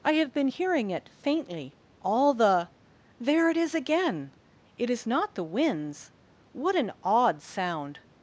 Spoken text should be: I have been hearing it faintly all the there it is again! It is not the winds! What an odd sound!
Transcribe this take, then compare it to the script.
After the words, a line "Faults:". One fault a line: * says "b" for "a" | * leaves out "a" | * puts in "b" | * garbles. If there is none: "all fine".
I have been hearing it faintly all the there it is again! It is not the winds! What an odd sound!
Faults:
all fine